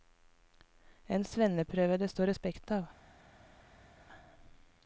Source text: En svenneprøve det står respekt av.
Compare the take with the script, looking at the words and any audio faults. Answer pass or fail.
pass